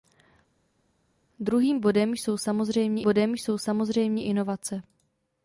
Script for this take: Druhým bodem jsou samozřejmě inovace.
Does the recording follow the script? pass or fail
fail